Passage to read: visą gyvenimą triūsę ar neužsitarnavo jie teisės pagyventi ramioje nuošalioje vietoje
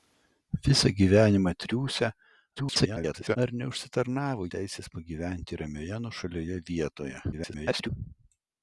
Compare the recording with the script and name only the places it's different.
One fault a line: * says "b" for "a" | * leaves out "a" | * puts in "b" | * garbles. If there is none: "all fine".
* garbles
* leaves out "jie"
* garbles